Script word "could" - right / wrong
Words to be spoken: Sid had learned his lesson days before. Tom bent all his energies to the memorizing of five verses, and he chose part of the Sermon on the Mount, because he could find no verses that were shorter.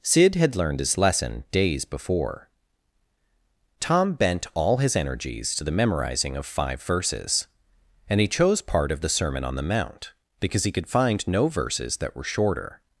right